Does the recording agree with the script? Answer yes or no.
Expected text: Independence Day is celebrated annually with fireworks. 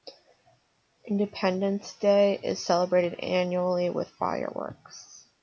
yes